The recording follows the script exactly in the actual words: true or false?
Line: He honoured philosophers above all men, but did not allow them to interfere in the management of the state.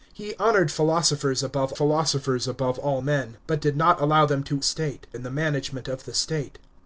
false